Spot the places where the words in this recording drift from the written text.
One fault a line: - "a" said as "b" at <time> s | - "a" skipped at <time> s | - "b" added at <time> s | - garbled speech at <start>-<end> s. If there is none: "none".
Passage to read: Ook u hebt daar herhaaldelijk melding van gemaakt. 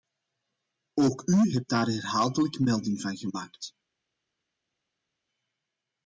none